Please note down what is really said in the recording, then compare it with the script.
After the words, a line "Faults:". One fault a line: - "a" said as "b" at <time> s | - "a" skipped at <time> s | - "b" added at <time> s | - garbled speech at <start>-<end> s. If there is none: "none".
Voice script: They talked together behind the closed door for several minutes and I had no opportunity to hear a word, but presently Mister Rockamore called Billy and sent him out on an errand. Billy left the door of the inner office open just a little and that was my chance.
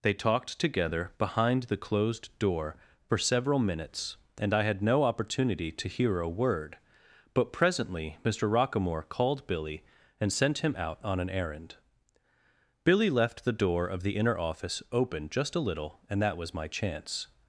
They talked together behind the closed door for several minutes and I had no opportunity to hear a word, but presently Mister Rockamore called Billy and sent him out on an errand. Billy left the door of the inner office open just a little and that was my chance.
Faults:
none